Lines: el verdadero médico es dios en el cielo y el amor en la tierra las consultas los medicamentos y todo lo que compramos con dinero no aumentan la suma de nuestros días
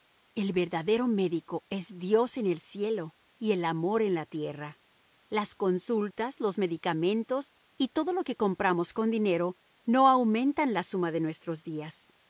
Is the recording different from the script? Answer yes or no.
no